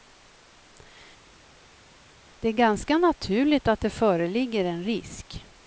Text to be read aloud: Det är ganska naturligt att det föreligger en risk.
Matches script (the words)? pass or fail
pass